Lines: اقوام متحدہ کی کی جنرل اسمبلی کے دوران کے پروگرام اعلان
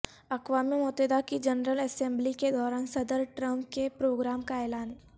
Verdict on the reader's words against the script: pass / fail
fail